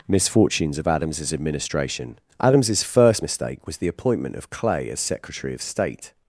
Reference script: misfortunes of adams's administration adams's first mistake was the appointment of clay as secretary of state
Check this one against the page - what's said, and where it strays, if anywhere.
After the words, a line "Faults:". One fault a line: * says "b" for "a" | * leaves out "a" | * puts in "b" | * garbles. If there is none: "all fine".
misfortunes of adams's administration adams's first mistake was the appointment of clay as secretary of state
Faults:
all fine